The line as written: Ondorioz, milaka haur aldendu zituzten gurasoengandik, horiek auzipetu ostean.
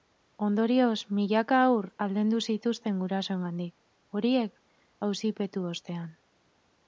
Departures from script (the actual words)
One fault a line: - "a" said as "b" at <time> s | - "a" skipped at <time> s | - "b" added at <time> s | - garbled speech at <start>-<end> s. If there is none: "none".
none